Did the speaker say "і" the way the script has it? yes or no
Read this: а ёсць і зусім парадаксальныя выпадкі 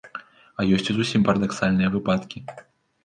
yes